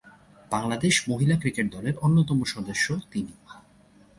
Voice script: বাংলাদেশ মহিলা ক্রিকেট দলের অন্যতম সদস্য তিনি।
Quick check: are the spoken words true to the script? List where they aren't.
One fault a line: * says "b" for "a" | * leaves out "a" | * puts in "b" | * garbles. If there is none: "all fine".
all fine